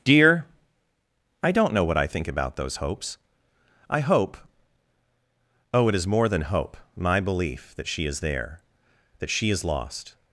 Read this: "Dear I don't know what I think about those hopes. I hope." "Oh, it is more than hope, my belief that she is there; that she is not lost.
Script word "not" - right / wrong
wrong